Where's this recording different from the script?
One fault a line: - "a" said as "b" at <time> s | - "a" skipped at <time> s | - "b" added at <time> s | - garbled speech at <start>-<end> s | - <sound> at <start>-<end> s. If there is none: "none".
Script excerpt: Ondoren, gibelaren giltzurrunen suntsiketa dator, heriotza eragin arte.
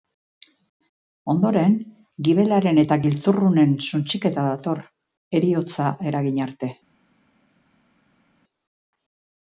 - "eta" added at 2.8 s